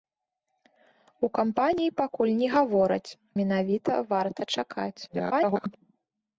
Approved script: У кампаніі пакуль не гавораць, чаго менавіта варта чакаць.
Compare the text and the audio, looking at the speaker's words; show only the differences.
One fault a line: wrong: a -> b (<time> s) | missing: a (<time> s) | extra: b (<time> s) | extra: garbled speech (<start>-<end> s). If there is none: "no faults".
missing: чаго (3.1 s)
extra: garbled speech (5.1-5.8 s)